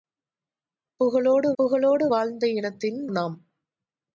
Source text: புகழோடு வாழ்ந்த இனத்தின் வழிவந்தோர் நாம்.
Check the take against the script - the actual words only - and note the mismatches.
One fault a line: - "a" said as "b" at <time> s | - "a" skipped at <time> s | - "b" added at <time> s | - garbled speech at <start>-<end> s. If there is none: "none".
- "புகழோடு" added at 1.6 s
- "வழிவந்தோர்" skipped at 3.1 s